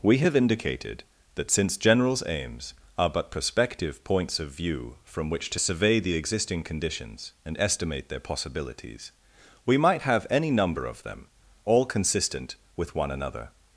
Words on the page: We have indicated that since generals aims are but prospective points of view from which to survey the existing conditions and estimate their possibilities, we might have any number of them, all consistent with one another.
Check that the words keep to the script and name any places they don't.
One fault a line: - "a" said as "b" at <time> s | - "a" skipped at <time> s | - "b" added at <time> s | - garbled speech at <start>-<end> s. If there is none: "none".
none